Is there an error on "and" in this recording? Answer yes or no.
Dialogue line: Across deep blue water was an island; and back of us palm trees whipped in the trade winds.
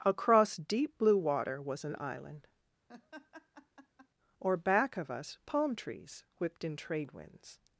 yes